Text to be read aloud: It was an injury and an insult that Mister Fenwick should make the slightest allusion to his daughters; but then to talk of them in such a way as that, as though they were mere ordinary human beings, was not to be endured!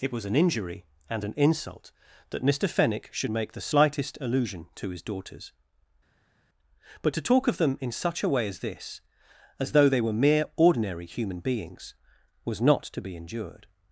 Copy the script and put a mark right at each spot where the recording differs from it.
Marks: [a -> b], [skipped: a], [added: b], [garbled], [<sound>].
It was an injury and an insult that Mister Fenwick should make the slightest allusion to his daughters; but [skipped: then] to talk of them in such a way as [that, -> this] as though they were mere ordinary human beings, was not to be endured!